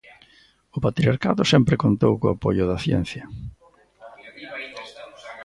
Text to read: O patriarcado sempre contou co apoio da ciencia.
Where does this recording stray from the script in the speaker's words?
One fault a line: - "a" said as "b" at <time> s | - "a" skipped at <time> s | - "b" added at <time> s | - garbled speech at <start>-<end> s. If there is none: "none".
none